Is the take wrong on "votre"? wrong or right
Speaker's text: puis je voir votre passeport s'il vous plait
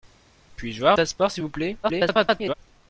wrong